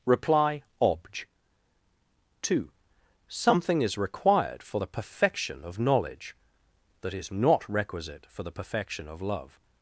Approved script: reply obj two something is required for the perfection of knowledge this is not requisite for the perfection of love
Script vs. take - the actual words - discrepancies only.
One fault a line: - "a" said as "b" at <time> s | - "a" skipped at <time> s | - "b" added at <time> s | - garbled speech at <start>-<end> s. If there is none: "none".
- "this" said as "that" at 7.0 s